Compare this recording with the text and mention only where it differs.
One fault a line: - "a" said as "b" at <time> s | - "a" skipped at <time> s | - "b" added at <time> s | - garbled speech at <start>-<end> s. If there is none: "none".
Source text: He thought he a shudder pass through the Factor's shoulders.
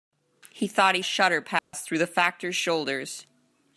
none